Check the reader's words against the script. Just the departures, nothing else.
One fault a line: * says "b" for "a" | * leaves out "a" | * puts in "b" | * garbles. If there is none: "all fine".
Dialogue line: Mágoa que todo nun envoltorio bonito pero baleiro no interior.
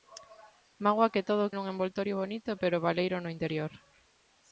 all fine